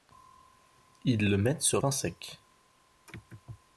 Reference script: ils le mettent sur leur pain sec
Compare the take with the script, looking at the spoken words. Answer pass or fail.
fail